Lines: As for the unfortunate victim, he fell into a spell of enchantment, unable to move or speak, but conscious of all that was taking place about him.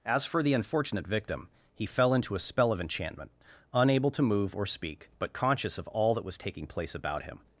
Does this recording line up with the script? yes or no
yes